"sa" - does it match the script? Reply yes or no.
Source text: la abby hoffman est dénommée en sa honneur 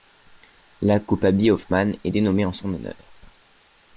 no